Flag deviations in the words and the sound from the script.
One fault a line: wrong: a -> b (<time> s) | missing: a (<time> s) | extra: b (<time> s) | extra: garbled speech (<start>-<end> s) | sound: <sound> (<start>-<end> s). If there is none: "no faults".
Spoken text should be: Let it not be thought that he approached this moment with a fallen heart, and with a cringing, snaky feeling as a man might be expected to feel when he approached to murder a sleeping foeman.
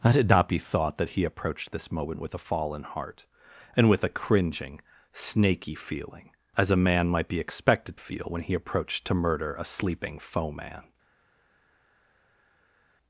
missing: to (8.0 s)